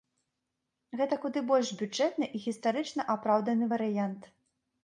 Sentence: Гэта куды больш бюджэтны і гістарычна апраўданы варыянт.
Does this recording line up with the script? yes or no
yes